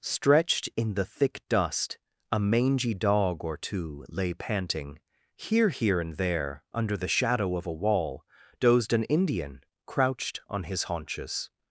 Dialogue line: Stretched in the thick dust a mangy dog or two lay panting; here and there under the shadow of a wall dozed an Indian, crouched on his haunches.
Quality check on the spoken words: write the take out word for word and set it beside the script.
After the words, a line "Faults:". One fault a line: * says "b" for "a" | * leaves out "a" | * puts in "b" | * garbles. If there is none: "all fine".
Stretched in the thick dust a mangy dog or two lay panting; here here and there under the shadow of a wall dozed an Indian, crouched on his haunches.
Faults:
* puts in "here"